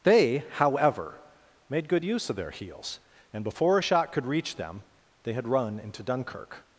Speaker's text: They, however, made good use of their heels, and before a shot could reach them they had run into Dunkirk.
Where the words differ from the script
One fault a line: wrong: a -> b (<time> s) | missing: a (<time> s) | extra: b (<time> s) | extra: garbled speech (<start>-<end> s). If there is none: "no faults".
no faults